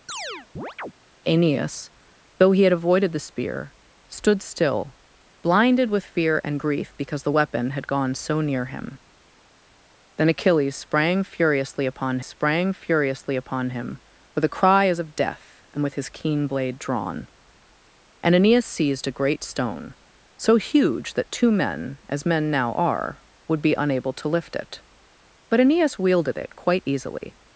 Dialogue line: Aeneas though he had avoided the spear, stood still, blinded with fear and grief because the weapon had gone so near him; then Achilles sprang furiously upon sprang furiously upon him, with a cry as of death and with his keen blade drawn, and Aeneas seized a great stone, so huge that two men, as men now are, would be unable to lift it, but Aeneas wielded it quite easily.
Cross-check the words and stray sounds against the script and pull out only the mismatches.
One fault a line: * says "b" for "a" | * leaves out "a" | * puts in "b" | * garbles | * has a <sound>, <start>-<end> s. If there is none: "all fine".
* has a chirp, 0.1-0.9 s
* has a dropout, 27.2-27.2 s